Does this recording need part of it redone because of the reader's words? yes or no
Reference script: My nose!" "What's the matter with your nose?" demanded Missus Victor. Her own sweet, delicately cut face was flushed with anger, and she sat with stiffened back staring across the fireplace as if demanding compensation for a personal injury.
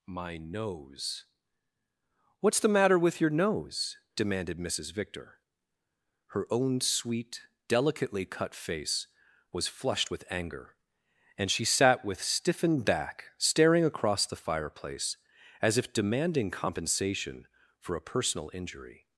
no